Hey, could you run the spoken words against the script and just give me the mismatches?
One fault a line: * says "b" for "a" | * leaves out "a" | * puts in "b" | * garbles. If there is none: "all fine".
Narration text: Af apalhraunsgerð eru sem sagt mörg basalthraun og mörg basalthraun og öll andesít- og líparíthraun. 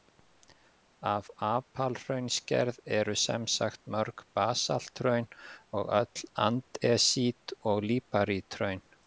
* leaves out "mörg basalthraun og"